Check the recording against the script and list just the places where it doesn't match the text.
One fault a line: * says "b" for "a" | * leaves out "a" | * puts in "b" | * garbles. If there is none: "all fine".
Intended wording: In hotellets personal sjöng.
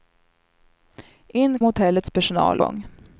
all fine